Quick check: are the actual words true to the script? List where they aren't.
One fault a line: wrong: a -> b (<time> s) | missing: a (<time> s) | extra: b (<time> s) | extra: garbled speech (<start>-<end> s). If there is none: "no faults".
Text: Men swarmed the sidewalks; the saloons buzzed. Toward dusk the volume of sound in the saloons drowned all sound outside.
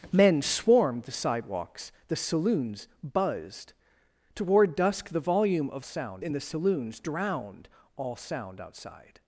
no faults